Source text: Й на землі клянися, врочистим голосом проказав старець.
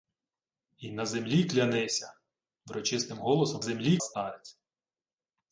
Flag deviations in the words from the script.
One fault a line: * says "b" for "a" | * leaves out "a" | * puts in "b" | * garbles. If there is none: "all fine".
* says "землі" for "проказав"